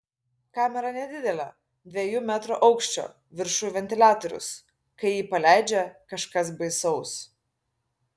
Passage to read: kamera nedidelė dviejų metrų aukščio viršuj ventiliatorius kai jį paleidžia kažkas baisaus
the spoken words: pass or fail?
pass